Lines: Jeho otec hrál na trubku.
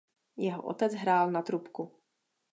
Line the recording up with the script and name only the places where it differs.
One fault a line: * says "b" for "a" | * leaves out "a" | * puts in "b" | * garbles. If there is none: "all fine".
all fine